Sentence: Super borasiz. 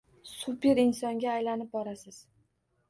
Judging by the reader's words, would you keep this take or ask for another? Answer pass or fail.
fail